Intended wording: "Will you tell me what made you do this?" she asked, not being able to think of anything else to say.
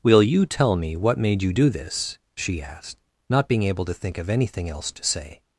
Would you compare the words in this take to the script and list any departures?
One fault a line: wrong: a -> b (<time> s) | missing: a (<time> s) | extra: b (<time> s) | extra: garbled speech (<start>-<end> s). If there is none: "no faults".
no faults